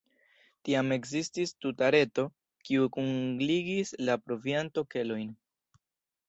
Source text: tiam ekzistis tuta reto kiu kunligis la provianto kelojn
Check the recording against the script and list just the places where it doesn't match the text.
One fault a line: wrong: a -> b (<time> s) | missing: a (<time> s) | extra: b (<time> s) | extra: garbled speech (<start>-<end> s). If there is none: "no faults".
no faults